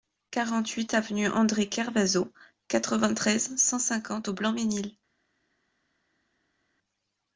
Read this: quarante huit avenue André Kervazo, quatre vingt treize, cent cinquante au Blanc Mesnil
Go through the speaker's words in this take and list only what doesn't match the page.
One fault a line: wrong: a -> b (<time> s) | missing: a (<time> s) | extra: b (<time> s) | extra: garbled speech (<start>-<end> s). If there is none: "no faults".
no faults